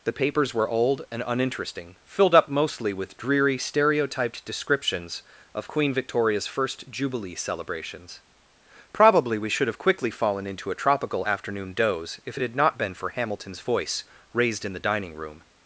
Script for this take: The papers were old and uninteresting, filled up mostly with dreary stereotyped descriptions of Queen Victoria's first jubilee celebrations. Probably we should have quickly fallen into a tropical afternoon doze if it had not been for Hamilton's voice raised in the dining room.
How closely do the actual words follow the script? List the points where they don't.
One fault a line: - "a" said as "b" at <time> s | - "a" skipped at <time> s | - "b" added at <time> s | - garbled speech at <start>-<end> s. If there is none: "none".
none